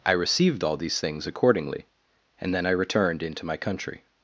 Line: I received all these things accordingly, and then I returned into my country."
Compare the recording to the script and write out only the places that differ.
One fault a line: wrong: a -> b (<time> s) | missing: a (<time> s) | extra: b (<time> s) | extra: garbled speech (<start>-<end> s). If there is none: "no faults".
no faults